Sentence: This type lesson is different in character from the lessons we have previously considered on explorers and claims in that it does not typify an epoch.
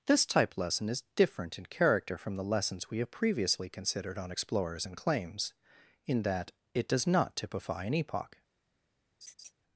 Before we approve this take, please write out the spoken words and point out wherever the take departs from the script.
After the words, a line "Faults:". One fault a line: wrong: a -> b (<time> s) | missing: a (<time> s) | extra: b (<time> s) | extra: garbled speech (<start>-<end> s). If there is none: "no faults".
This type lesson is different in character from the lessons we have previously considered on explorers and claims in that it does not typify an epoch.
Faults:
no faults